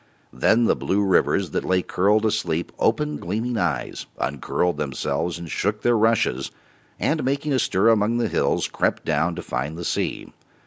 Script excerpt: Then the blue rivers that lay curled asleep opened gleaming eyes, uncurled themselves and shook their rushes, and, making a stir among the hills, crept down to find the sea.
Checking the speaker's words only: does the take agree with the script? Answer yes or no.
yes